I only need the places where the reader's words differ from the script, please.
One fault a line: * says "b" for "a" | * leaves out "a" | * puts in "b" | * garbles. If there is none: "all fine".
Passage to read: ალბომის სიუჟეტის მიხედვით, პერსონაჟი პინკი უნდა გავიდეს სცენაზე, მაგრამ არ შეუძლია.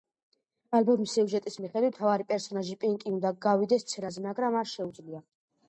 * puts in "მთავარი"